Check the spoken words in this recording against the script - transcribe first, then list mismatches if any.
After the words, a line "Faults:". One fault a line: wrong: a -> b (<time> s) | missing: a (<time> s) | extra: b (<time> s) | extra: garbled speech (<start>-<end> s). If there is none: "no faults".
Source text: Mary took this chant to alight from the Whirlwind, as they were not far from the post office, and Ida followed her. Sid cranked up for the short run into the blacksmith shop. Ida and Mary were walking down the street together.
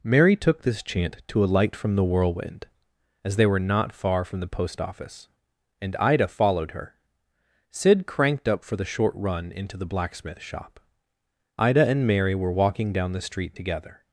Mary took this chant to alight from the Whirlwind, as they were not far from the post office, and Ida followed her. Sid cranked up for the short run into the blacksmith shop. Ida and Mary were walking down the street together.
Faults:
no faults